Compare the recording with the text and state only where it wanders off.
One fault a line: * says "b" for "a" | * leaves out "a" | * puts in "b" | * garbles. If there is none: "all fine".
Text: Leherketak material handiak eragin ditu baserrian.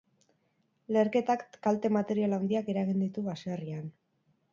* puts in "kalte"